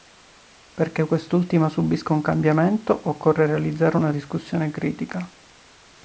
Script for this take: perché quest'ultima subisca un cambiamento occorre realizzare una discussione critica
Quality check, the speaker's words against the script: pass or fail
pass